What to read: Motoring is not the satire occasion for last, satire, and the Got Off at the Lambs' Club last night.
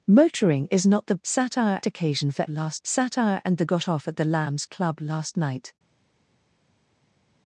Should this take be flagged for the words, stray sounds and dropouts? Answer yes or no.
no